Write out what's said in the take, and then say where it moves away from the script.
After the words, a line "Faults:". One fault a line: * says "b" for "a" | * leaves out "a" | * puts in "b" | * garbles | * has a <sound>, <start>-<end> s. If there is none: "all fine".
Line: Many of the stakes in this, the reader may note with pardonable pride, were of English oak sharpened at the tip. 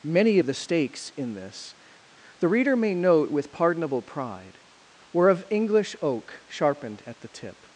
Many of the stakes in this, the reader may note with pardonable pride, were of English oak sharpened at the tip.
Faults:
all fine